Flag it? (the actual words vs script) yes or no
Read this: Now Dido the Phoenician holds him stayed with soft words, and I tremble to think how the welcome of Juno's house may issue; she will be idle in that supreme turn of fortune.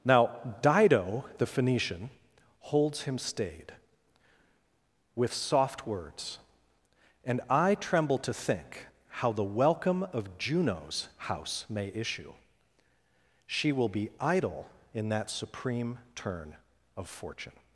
no